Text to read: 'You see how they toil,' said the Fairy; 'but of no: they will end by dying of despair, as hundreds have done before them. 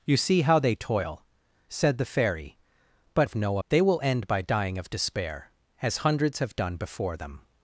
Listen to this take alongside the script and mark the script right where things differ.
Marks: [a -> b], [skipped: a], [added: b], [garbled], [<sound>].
'You see how they toil,' said the Fairy; 'but of no: they will end by dying of despair, as hundreds have done before them.